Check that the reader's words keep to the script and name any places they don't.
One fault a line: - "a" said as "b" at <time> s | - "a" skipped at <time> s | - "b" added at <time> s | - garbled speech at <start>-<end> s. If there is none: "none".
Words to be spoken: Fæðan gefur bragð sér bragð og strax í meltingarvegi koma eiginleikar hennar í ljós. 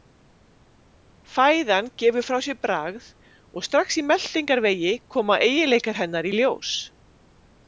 - "bragð" said as "frá" at 2.3 s